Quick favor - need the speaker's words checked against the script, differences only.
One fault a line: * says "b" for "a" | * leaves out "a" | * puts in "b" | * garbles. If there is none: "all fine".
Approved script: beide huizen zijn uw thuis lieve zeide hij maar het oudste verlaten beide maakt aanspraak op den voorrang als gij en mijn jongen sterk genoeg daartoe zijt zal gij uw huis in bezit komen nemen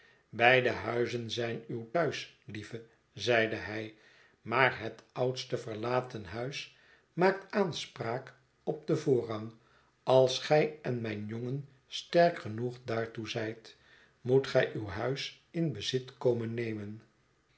* says "huis" for "beide"
* says "moet" for "zal"